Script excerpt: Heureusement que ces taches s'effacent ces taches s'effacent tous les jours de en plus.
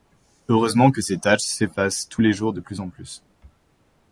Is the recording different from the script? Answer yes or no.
yes